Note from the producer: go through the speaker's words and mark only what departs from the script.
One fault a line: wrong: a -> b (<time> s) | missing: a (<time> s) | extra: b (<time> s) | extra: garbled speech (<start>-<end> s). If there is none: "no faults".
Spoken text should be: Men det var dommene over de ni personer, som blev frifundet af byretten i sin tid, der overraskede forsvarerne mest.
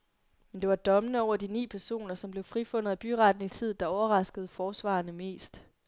missing: sin (3.5 s)